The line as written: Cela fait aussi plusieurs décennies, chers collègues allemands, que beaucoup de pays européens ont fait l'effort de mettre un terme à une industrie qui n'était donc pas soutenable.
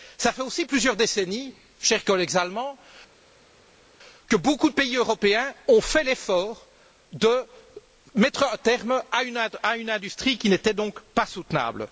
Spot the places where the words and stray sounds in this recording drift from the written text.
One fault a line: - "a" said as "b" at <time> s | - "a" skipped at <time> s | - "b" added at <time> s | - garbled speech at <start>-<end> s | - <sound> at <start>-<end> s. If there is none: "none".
none